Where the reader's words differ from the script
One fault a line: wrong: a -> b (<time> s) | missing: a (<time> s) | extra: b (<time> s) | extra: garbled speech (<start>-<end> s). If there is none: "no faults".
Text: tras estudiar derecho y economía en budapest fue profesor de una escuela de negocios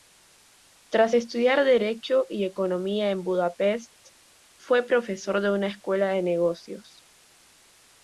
no faults